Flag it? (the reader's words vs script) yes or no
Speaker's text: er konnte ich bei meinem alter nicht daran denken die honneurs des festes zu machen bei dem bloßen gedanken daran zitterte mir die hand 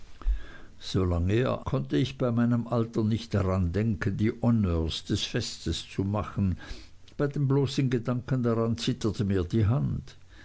no